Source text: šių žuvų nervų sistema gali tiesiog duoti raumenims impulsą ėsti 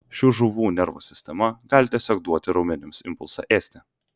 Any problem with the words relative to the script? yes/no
no